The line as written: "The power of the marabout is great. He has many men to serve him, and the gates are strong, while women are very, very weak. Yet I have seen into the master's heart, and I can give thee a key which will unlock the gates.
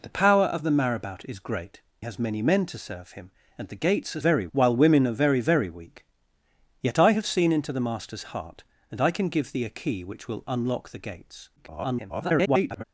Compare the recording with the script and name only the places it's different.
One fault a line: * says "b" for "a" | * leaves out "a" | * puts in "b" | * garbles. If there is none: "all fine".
* leaves out "He"
* says "very" for "strong"
* garbles